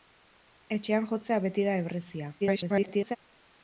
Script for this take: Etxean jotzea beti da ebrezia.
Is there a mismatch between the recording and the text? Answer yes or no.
yes